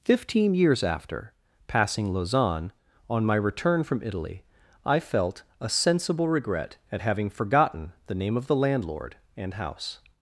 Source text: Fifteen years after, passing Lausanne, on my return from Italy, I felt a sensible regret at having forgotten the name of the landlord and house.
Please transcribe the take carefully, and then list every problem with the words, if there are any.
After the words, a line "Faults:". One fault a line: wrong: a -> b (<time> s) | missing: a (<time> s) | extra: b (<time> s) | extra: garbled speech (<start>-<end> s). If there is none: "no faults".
Fifteen years after, passing Lausanne, on my return from Italy, I felt a sensible regret at having forgotten the name of the landlord and house.
Faults:
no faults